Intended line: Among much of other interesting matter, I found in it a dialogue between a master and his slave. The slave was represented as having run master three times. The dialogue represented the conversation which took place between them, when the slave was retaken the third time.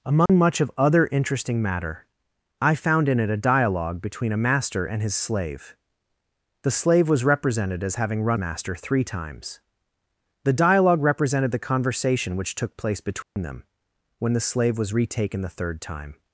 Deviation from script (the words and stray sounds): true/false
true